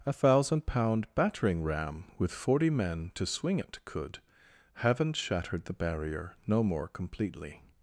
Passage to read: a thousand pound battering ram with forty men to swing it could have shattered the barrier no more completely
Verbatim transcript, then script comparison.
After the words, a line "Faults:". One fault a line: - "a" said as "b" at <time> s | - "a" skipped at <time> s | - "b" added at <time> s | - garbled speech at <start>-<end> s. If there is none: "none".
a thousand pound battering ram with forty men to swing it could haven't shattered the barrier no more completely
Faults:
- "have" said as "haven't" at 4.7 s